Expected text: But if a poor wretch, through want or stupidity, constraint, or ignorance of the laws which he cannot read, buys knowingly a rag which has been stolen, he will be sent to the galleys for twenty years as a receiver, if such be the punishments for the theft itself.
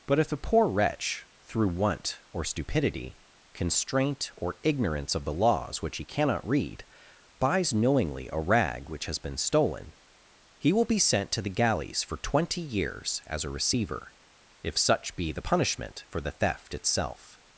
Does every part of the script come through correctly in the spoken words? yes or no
no